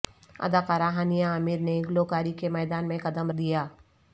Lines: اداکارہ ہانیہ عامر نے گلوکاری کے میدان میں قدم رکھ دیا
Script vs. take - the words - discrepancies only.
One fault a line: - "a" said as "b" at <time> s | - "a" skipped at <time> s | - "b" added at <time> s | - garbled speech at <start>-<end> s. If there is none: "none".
- "رکھ" skipped at 3.3 s